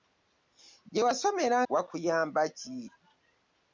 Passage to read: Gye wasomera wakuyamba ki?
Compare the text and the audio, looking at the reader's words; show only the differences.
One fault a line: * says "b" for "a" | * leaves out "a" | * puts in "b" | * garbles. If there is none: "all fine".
all fine